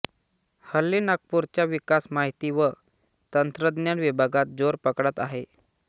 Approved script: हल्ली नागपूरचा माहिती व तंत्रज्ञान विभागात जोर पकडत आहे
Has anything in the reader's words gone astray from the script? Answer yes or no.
yes